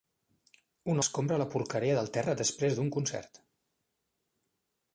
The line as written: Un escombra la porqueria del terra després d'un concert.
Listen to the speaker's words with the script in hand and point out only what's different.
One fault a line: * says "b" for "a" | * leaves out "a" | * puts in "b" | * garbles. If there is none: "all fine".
all fine